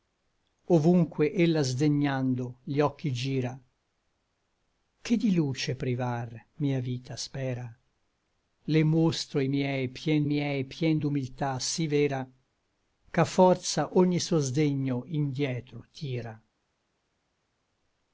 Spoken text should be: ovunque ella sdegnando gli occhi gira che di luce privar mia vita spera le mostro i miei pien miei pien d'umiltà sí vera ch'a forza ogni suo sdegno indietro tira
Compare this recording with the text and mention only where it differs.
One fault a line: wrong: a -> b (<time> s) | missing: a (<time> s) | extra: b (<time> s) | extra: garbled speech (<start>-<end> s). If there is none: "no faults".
no faults